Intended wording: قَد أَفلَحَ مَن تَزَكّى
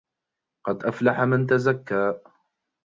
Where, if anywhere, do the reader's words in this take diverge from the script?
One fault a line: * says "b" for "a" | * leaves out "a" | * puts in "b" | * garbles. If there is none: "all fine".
all fine